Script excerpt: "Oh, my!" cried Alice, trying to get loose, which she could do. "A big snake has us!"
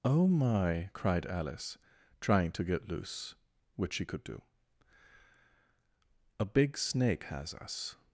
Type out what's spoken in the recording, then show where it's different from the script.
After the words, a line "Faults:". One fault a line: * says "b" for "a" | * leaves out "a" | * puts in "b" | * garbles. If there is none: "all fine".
"Oh, my!" cried Alice, trying to get loose, which she could do. "A big snake has us!"
Faults:
all fine